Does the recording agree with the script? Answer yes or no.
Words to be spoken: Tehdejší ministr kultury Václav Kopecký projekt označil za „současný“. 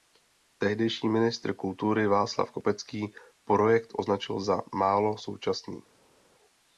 no